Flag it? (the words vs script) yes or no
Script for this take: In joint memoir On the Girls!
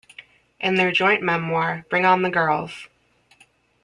yes